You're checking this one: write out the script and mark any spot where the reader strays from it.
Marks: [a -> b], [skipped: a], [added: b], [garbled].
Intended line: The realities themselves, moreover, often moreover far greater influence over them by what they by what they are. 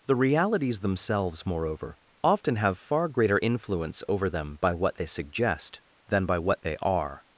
The realities themselves, moreover, often [moreover -> have] far greater influence over them by what they [added: suggest than] by what they are.